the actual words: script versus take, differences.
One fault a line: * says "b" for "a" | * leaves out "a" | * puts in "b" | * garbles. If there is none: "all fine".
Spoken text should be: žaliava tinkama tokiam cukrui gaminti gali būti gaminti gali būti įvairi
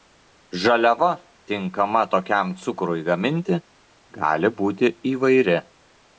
* leaves out "gaminti gali būti"